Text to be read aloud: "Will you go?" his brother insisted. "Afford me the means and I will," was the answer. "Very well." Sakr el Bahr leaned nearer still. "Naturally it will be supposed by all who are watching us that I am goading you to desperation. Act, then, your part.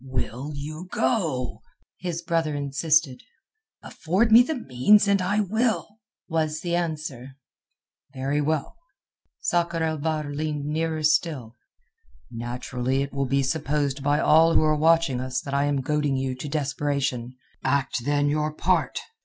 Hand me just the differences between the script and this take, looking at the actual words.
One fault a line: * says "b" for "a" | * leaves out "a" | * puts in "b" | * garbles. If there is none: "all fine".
all fine